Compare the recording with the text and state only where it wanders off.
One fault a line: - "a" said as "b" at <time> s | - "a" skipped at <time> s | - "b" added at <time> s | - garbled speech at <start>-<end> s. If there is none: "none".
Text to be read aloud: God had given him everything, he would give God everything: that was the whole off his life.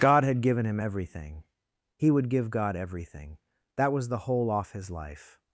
none